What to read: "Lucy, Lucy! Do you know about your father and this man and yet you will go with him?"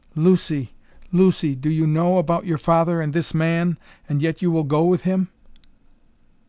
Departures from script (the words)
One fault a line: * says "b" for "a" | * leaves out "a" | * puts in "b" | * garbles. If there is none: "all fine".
all fine